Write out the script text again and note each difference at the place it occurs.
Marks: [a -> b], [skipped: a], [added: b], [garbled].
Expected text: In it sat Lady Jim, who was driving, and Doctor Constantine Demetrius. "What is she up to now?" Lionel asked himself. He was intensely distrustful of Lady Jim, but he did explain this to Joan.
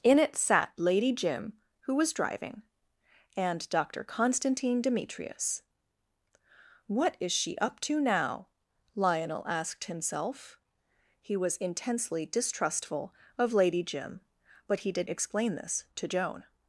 In it sat Lady Jim, who was driving, and Doctor Constantine Demetrius. "What is she up to now?" Lionel asked himself. He was intensely distrustful of Lady Jim, but he did explain this to Joan.